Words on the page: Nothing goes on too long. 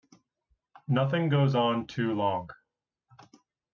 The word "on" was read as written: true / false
true